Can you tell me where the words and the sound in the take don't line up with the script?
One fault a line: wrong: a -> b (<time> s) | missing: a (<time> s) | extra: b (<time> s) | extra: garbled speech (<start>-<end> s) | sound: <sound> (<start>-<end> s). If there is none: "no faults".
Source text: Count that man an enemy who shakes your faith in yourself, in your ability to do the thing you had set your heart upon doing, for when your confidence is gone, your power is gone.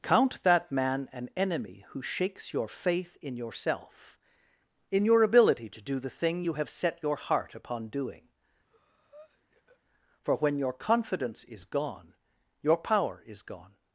wrong: had -> have (6.5 s)
sound: breath (8.7-9.8 s)